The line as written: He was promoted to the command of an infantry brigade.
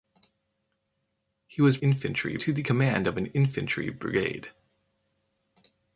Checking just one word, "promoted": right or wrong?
wrong